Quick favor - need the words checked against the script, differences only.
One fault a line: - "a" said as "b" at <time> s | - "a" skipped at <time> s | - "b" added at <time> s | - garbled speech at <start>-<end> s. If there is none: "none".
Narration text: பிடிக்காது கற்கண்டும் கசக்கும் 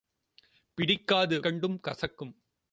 none